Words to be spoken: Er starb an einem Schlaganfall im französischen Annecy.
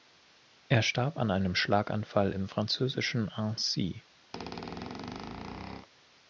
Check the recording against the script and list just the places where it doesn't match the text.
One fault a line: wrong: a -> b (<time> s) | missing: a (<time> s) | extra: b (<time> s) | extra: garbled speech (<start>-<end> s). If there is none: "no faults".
no faults